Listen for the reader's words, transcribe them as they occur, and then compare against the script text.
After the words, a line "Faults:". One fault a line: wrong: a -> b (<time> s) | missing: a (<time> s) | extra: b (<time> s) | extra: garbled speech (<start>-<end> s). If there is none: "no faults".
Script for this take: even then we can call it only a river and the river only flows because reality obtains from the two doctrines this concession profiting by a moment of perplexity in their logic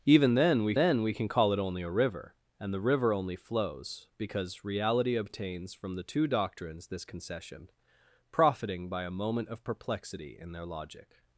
even then we then we can call it only a river and the river only flows because reality obtains from the two doctrines this concession profiting by a moment of perplexity in their logic
Faults:
extra: then we (0.7 s)